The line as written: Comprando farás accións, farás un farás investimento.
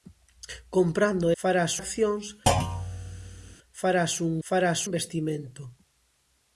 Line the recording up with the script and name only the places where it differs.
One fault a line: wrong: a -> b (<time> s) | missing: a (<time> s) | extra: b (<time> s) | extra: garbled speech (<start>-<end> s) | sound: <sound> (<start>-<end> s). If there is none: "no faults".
sound: thud (2.5-3.6 s)